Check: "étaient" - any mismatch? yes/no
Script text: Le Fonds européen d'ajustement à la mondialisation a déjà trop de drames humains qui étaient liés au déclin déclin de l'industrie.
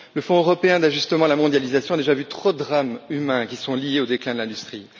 yes